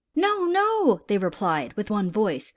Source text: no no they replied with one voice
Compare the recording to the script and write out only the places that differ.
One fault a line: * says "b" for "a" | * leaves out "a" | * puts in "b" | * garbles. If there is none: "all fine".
all fine